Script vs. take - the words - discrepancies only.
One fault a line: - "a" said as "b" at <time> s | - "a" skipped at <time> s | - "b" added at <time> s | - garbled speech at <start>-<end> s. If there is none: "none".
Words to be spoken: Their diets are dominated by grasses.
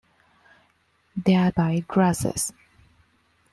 - "diets are dominated" skipped at 1.5 s